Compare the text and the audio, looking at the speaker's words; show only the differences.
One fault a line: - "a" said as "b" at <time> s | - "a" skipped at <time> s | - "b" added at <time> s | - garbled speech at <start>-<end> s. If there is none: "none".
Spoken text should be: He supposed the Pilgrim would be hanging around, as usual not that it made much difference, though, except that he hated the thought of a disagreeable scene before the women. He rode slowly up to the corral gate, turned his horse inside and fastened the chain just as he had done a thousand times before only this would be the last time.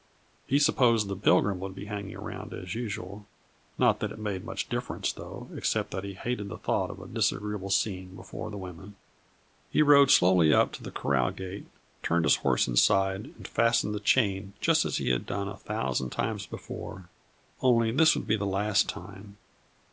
none